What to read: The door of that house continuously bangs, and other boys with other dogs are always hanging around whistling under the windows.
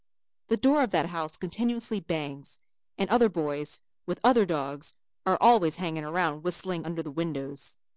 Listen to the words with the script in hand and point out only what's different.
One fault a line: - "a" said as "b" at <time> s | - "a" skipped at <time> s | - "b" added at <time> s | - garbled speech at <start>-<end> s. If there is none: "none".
none